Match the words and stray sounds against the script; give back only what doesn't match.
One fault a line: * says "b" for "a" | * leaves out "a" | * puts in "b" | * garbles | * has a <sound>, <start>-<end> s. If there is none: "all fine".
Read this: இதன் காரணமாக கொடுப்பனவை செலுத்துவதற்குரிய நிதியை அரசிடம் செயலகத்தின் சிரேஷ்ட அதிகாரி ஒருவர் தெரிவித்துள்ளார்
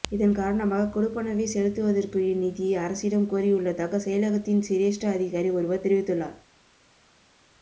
* puts in "கோரியுள்ளதாக"